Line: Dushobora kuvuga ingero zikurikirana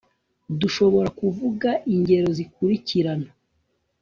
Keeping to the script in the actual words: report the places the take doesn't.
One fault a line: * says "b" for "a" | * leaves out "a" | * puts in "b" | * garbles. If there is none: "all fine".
all fine